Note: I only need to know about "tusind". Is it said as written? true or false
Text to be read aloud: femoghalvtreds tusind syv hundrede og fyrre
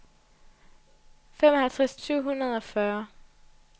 false